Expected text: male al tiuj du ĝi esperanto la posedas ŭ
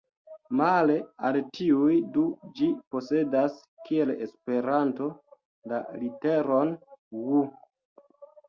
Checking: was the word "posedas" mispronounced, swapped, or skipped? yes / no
yes